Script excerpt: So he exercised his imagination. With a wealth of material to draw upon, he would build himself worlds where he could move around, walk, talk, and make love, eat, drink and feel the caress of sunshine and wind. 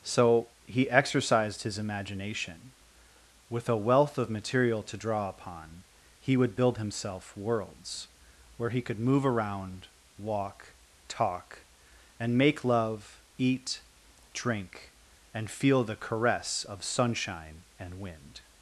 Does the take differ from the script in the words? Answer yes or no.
no